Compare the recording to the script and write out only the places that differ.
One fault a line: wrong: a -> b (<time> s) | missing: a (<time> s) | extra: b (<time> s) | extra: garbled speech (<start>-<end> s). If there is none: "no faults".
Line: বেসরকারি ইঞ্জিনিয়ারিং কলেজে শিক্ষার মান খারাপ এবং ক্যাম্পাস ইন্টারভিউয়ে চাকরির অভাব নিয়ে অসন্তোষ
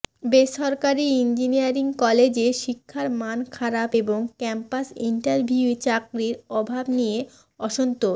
no faults